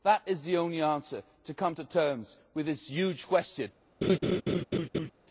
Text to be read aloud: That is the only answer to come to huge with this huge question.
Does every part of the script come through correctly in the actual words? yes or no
no